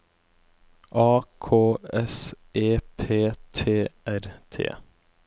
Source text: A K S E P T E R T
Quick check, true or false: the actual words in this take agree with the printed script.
false